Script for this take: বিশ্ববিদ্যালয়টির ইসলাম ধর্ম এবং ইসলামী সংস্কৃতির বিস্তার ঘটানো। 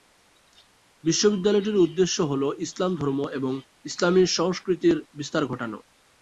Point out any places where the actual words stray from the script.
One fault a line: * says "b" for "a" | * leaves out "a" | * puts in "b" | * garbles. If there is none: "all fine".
* puts in "উদ্দেশ্য হল"